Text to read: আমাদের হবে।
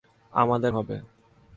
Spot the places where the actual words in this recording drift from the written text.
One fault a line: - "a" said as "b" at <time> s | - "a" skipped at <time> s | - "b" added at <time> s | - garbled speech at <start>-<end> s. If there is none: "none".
none